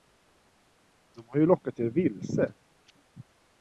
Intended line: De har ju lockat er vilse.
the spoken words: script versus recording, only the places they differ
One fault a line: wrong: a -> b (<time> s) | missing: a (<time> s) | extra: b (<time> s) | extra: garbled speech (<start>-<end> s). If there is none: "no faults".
no faults